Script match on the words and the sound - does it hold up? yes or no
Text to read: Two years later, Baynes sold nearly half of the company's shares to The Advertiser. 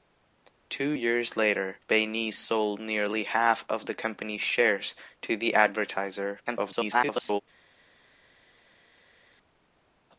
no